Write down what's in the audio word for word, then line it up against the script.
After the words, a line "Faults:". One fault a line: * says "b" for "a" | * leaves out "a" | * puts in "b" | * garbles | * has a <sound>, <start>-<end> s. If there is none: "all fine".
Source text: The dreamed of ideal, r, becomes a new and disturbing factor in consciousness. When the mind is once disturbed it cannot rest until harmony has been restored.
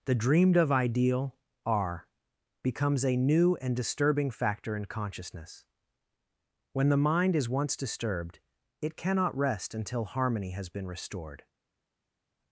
The dreamed of ideal, r, becomes a new and disturbing factor in consciousness. When the mind is once disturbed it cannot rest until harmony has been restored.
Faults:
all fine